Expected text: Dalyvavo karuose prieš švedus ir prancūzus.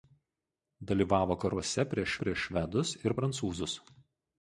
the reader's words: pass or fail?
fail